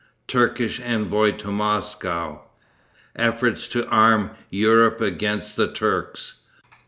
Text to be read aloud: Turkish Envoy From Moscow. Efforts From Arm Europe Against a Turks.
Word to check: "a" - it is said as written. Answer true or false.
false